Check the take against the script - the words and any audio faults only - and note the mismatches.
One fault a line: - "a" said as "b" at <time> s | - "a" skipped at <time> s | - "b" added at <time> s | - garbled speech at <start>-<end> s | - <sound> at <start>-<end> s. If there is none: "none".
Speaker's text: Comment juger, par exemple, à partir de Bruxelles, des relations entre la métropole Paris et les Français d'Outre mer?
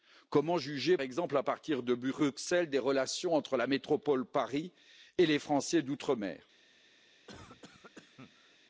- "par" skipped at 1.0 s
- cough at 7.3-8.6 s